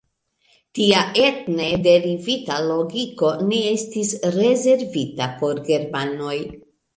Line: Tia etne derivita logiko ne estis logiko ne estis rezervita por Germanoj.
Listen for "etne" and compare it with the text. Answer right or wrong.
right